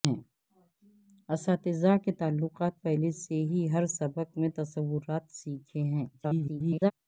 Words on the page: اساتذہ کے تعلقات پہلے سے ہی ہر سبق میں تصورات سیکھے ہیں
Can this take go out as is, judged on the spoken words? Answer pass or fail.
fail